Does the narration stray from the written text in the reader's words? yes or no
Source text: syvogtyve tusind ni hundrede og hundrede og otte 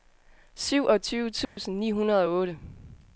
yes